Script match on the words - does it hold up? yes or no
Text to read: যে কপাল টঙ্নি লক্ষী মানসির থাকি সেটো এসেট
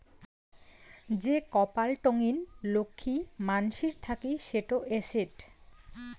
yes